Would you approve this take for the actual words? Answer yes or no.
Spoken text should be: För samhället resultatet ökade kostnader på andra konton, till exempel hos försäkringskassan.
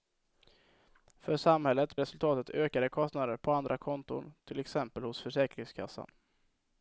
yes